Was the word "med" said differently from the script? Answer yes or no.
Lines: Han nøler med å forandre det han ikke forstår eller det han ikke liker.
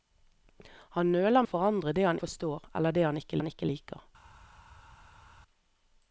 yes